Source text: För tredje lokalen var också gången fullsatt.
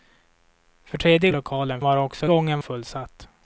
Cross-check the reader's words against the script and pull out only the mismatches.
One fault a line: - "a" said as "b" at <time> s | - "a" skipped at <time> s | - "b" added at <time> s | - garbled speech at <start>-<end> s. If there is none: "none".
none